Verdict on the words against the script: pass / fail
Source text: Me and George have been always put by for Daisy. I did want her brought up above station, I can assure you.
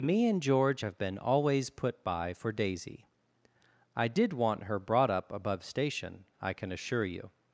pass